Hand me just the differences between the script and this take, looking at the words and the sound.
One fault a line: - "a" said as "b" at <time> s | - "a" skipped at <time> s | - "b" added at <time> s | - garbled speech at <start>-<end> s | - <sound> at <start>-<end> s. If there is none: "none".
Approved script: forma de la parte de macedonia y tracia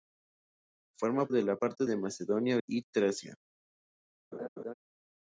- laugh at 4.3-4.7 s